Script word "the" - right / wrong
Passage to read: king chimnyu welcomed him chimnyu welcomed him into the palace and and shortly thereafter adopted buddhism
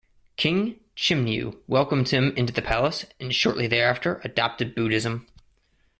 right